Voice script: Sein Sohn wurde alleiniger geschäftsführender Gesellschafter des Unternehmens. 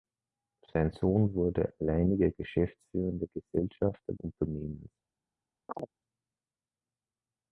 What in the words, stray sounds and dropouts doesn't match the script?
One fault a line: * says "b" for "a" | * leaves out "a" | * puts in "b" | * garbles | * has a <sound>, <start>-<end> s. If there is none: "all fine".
* leaves out "des"
* has a chirp, 5.7-5.9 s